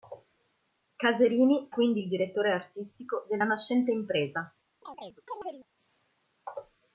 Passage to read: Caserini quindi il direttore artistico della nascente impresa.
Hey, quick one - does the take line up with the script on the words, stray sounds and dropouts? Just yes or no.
no